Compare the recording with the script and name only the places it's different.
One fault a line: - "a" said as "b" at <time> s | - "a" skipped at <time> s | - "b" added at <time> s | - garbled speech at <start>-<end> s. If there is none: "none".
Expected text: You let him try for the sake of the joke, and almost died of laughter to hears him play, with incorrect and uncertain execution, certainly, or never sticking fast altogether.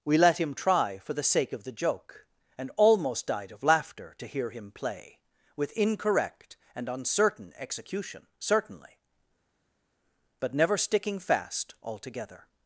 - "You" said as "We" at 0.0 s
- "hears" said as "hear" at 4.3 s
- "or" said as "but" at 10.4 s